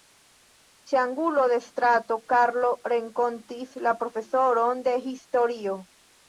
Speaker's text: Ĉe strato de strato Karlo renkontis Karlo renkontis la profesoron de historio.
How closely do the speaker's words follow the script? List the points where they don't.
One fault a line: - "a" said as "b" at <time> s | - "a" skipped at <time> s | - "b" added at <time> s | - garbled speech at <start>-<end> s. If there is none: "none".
- "strato" said as "angulo" at 1.0 s
- "Karlo renkontis" skipped at 3.8 s